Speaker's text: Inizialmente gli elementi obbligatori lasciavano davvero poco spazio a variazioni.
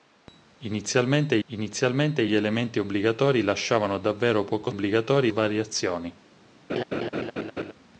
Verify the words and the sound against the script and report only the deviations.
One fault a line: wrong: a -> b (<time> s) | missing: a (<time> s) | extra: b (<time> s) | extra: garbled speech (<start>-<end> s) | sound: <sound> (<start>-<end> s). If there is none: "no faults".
extra: inizialmente (1.5 s)
wrong: spazio -> obbligatori (4.7 s)
sound: laugh (6.7-7.7 s)